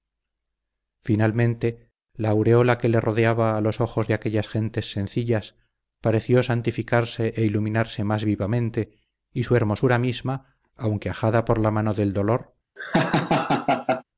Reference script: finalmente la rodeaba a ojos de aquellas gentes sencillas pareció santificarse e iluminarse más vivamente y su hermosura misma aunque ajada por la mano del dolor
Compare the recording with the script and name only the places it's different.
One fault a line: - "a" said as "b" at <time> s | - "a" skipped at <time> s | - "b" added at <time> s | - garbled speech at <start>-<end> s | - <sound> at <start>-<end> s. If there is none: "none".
- "aureola que le" added at 2.3 s
- "los" added at 3.6 s
- laugh at 12.8-14.0 s